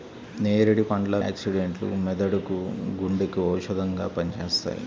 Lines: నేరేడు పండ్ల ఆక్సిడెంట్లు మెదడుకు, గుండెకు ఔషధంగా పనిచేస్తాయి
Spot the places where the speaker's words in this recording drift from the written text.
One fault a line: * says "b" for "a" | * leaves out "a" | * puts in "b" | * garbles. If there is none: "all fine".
all fine